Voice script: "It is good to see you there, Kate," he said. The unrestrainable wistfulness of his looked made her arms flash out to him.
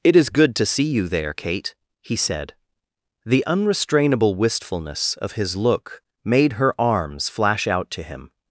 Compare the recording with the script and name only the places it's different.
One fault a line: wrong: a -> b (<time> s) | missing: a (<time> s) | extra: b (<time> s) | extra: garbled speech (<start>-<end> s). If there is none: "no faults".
wrong: looked -> look (5.5 s)